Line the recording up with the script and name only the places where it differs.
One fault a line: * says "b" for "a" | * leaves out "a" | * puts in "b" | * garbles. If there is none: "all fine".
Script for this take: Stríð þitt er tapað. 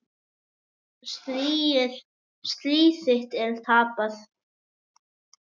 all fine